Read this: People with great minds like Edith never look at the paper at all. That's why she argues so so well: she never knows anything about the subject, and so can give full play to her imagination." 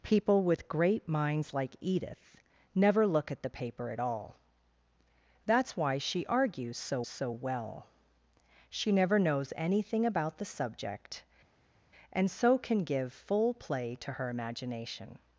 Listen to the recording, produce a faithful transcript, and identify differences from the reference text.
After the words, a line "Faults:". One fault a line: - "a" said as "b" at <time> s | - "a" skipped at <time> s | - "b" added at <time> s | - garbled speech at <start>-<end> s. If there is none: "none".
People with great minds like Edith never look at the paper at all. That's why she argues so so well: she never knows anything about the subject, and so can give full play to her imagination."
Faults:
none